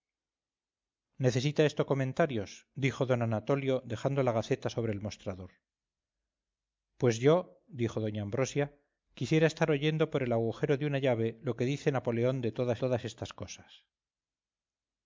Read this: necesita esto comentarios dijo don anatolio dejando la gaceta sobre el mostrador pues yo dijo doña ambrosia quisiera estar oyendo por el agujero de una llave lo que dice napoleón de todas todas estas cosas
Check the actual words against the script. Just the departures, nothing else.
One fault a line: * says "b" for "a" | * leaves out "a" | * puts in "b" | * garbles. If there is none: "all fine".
all fine